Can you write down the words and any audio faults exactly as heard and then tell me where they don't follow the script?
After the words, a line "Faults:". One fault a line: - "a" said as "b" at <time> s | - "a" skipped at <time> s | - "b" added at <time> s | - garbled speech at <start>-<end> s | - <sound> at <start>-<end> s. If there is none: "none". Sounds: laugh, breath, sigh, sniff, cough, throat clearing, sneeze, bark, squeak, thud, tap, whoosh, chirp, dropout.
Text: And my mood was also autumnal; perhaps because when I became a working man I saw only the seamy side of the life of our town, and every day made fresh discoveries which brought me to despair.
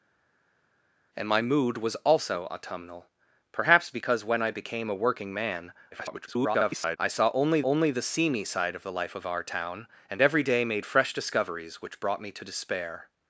And my mood was also autumnal; perhaps because when I became a working man [garbled] I saw only only the seamy side of the life of our town, and every day made fresh discoveries which brought me to despair.
Faults:
- garbled speech at 5.9-7.0 s
- "only" added at 7.6 s